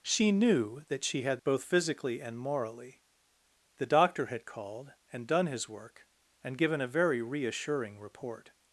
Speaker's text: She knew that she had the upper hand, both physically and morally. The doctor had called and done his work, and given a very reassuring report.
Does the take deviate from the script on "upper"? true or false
true